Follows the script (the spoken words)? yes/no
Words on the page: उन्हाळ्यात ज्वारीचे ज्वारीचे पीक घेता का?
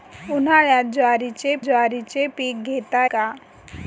yes